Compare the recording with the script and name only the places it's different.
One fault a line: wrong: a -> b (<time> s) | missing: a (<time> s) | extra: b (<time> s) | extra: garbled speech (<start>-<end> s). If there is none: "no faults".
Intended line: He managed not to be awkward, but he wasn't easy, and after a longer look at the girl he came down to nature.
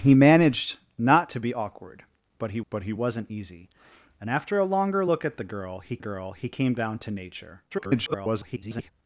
extra: but he (2.7 s)
extra: girl he (6.0 s)
extra: garbled speech (7.7-8.9 s)